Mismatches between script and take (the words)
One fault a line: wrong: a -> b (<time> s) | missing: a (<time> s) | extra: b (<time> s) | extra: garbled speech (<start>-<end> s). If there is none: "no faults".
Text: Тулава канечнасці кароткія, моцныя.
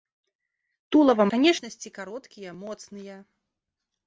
no faults